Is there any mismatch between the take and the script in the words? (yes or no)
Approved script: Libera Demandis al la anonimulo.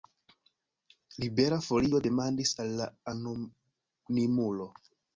yes